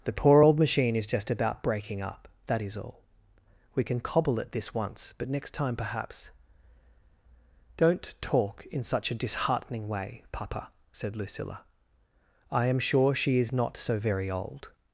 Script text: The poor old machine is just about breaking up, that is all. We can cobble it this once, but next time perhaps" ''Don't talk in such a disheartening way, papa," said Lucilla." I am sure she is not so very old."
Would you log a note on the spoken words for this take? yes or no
no